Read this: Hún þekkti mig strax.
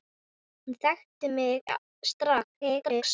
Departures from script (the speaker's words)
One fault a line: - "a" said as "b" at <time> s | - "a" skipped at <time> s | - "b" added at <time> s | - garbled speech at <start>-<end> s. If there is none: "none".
- garbled speech at 2.5-3.0 s